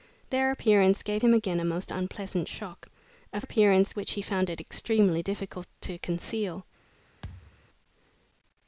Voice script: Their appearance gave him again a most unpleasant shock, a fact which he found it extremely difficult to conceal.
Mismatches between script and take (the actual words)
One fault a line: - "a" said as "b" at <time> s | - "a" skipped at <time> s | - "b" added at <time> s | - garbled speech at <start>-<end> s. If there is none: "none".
- "fact" said as "appearance" at 3.4 s